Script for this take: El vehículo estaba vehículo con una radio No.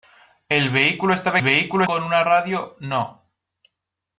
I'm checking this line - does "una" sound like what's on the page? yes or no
yes